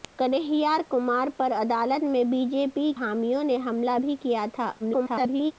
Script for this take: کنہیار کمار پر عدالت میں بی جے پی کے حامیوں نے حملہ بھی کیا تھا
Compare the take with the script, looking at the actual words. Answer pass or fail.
fail